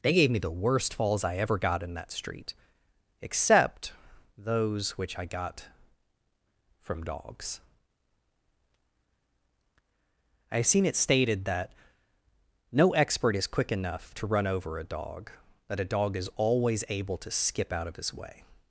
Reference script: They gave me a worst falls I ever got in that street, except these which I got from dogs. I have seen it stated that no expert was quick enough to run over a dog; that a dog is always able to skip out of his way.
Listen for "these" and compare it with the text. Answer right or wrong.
wrong